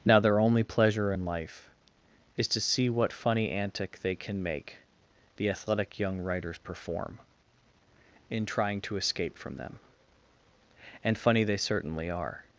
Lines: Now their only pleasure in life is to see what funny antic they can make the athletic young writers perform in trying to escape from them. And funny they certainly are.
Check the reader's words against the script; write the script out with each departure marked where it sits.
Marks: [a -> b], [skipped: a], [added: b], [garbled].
Now their only pleasure in life is to see what funny antic they can make the athletic young writers perform in trying to escape from them. And funny they certainly are.